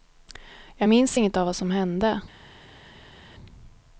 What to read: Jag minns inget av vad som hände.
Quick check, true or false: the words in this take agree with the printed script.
true